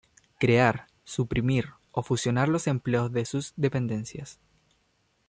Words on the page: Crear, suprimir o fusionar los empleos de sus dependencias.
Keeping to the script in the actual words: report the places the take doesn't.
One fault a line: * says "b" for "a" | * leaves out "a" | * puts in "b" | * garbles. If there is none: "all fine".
all fine